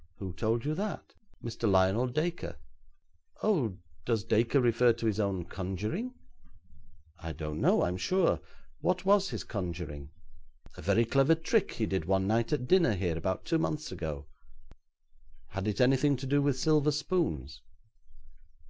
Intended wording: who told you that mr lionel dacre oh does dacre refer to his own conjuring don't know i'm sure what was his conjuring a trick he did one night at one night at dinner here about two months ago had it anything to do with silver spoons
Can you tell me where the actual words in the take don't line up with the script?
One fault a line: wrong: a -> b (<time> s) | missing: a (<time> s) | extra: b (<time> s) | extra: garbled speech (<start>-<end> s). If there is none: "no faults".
extra: i (7.2 s)
extra: very clever (10.8 s)
missing: one night at (12.6 s)